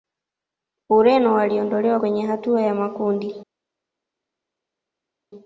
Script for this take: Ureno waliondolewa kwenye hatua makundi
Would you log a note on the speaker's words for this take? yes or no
yes